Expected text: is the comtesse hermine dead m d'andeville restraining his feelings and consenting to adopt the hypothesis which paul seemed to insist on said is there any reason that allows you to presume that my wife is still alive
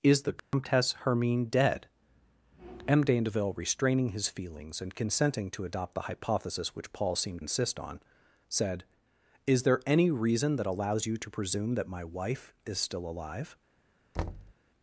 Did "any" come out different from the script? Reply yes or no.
no